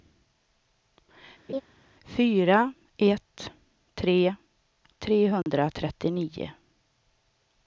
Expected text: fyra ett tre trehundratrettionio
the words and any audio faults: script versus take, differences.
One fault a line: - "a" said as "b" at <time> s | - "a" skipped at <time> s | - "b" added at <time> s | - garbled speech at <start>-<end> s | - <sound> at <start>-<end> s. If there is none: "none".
- laugh at 1.5-1.6 s
- dropout at 5.4-5.5 s